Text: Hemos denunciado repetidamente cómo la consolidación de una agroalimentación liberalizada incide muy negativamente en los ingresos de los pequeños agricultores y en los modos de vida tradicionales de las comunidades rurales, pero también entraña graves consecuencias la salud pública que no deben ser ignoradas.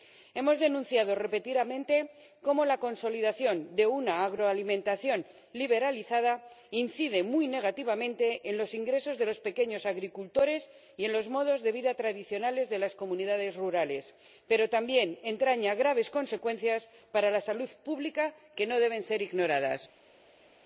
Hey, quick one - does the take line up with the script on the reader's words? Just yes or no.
no